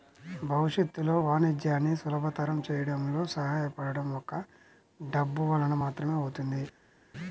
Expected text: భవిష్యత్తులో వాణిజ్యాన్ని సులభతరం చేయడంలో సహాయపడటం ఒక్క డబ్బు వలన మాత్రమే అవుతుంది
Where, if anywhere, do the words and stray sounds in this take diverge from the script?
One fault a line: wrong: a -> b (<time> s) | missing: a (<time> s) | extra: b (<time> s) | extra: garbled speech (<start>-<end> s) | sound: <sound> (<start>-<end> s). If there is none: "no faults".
no faults